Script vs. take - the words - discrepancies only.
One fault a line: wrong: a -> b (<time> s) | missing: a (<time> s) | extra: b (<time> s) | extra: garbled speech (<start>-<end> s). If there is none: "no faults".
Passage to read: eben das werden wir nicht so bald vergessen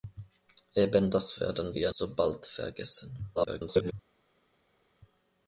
missing: nicht (1.9 s)
extra: garbled speech (3.4-3.9 s)